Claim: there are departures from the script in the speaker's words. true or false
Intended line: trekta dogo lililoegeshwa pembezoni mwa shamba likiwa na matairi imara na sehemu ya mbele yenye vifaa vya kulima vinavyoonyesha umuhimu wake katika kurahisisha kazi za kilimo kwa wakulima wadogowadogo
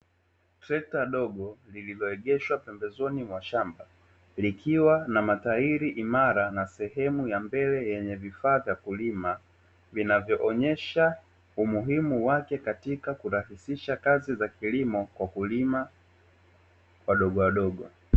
false